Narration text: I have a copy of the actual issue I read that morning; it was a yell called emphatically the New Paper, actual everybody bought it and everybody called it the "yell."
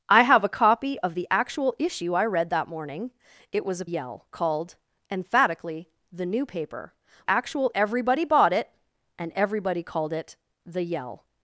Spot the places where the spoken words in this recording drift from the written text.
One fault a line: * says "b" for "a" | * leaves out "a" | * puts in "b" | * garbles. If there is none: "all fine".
all fine